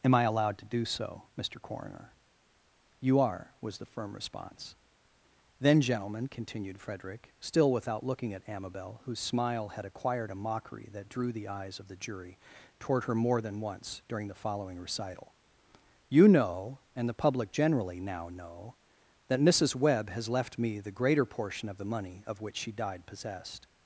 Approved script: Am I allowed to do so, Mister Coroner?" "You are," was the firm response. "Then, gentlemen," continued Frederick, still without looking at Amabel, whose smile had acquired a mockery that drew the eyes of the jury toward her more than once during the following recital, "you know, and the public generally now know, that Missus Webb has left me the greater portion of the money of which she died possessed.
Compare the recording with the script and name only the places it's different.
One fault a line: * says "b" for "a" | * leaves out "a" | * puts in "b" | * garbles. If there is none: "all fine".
all fine